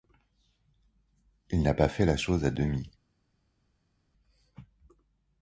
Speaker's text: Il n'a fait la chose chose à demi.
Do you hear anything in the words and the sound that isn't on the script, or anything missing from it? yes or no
yes